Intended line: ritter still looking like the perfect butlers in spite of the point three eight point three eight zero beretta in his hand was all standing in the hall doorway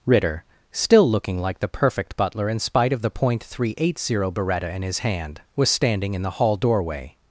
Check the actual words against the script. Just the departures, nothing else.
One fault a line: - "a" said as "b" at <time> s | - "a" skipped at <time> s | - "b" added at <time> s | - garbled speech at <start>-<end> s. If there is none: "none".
- "butlers" said as "butler" at 2.1 s
- "point three eight" skipped at 4.0 s
- "all" skipped at 5.7 s